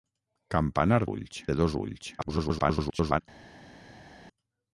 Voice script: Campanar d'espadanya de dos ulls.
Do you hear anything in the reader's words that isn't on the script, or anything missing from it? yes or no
yes